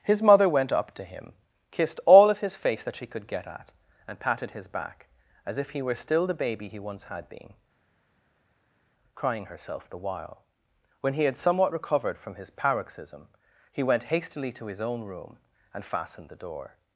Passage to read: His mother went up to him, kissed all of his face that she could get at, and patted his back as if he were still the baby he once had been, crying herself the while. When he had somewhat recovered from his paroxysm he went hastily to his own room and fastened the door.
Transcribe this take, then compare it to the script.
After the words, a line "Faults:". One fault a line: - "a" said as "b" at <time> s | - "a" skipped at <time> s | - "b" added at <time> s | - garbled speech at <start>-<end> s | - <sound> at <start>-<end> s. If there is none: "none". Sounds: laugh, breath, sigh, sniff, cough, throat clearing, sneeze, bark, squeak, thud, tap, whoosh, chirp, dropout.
His mother went up to him, kissed all of his face that she could get at, and patted his back as if he were still the baby he once had been, crying herself the while. When he had somewhat recovered from his paroxysm he went hastily to his own room and fastened the door.
Faults:
none